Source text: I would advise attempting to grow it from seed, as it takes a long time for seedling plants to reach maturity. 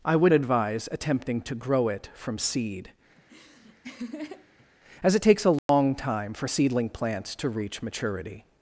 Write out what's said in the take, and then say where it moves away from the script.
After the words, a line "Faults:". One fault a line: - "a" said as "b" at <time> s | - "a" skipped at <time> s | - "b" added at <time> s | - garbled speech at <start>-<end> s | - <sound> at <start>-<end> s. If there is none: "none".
I would advise attempting to grow it from seed, as it takes a long time for seedling plants to reach maturity.
Faults:
- laugh at 3.2-4.7 s
- dropout at 5.6-5.7 s